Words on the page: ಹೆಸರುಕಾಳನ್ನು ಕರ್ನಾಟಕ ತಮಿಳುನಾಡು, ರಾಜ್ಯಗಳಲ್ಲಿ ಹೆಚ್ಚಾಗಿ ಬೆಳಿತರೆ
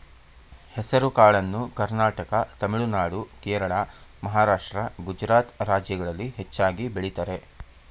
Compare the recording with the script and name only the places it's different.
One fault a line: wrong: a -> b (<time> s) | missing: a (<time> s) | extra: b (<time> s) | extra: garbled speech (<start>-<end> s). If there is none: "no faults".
extra: ಕೇರಳ ಮಹಾರಾಷ್ಟ್ರ ಗುಜರಾತ್ (3.4 s)